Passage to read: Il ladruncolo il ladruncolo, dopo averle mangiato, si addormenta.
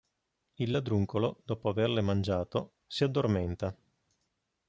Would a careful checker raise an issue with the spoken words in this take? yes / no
yes